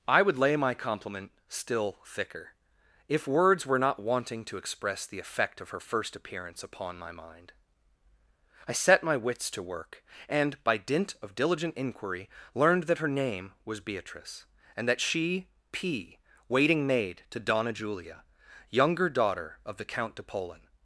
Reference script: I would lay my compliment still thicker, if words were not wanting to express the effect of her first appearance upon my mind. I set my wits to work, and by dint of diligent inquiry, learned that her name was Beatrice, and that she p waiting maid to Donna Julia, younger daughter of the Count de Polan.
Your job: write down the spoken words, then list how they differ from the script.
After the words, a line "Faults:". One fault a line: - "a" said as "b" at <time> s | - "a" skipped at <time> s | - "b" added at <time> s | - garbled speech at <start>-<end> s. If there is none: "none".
I would lay my compliment still thicker, if words were not wanting to express the effect of her first appearance upon my mind. I set my wits to work, and by dint of diligent inquiry, learned that her name was Beatrice, and that she p waiting maid to Donna Julia, younger daughter of the Count de Polan.
Faults:
none